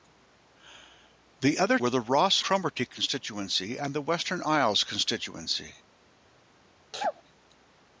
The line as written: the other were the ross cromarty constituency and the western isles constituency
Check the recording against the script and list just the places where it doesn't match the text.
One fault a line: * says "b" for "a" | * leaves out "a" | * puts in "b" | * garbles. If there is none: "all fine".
all fine